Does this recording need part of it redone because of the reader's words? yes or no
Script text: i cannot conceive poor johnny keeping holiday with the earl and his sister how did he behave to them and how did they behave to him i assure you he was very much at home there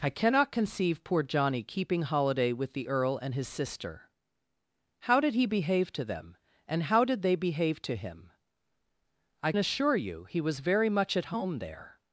no